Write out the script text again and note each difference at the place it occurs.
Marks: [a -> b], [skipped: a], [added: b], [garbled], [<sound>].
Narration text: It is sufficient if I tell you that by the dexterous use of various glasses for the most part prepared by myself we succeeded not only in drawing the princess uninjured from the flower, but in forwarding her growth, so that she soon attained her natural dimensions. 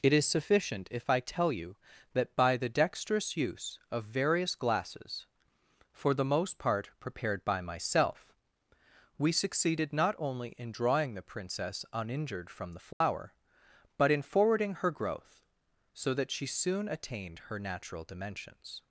It is sufficient if I tell you that by the dexterous use of various glasses for the most part prepared by myself we succeeded not only in drawing the princess uninjured from the flower, [dropout] but in forwarding her growth, so that she soon attained her natural dimensions.